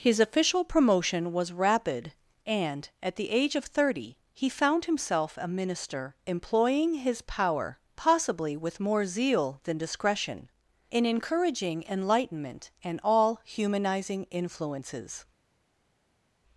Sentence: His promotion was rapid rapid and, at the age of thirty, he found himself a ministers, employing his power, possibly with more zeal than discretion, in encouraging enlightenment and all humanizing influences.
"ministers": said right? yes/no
no